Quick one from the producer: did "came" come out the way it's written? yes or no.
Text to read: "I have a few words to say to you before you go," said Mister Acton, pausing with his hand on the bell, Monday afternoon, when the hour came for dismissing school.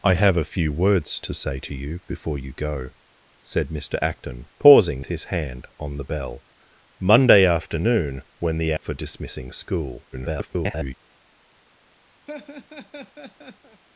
no